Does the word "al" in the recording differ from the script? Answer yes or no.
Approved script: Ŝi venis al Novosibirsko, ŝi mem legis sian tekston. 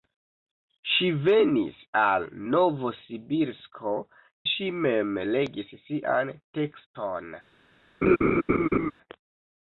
no